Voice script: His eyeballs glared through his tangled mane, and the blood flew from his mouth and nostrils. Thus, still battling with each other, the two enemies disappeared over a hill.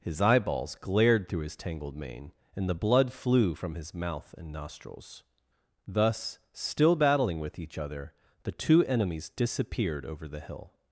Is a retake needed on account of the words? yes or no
yes